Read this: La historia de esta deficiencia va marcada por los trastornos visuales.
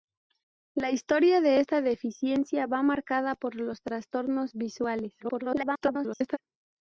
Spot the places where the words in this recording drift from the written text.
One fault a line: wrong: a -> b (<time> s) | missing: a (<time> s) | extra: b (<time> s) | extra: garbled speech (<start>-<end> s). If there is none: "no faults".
extra: garbled speech (5.2-6.4 s)